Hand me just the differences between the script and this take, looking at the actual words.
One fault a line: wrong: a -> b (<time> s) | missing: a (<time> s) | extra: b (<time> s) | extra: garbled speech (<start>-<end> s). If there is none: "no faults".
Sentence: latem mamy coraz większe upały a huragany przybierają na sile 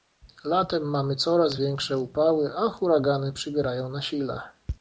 no faults